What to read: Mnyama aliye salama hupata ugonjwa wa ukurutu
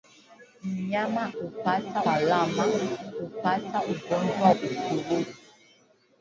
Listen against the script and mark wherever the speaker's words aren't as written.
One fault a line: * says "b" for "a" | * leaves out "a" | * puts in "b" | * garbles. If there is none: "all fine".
* says "hupata" for "aliye"
* leaves out "wa"